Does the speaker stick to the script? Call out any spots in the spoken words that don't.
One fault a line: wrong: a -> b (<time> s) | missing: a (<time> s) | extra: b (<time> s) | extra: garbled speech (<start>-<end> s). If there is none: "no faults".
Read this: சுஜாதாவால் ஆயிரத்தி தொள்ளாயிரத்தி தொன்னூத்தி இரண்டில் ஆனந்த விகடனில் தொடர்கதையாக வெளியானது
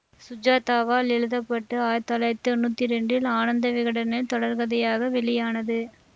extra: எழுத பட்டு (1.1 s)